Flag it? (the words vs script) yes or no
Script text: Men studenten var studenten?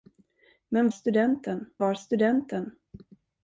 no